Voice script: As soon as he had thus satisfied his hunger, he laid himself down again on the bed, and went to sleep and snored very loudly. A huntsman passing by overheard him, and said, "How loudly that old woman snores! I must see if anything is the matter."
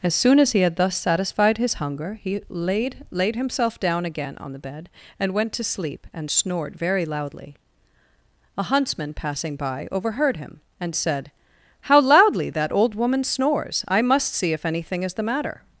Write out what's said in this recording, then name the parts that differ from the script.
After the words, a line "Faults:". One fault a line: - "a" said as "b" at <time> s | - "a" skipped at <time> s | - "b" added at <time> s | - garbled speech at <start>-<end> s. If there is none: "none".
As soon as he had thus satisfied his hunger, he laid laid himself down again on the bed, and went to sleep and snored very loudly. A huntsman passing by overheard him, and said, "How loudly that old woman snores! I must see if anything is the matter."
Faults:
- "laid" added at 3.1 s